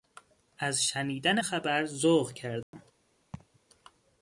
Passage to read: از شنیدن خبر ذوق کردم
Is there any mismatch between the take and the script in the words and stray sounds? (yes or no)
yes